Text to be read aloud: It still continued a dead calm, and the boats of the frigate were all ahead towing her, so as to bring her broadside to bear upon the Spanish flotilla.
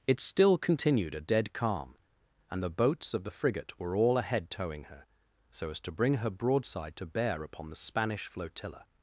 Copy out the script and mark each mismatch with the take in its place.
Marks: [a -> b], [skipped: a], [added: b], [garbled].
It still continued a dead calm, and the boats of the frigate were all ahead towing her, so as to bring her broadside to bear upon the Spanish flotilla.